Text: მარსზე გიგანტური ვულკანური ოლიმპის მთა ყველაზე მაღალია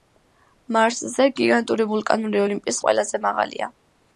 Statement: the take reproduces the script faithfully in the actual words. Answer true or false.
false